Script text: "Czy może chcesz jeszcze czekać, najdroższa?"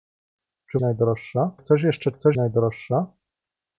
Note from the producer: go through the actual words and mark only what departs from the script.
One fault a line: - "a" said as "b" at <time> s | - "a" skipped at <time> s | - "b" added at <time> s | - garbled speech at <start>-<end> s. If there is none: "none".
- "może" said as "najdroższa" at 0.8 s
- "czekać" said as "chcesz" at 2.1 s